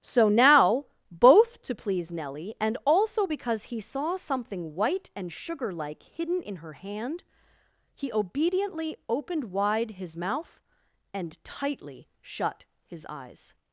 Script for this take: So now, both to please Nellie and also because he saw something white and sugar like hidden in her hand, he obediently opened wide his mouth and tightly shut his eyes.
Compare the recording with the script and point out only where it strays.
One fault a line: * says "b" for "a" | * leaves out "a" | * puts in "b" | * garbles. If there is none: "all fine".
all fine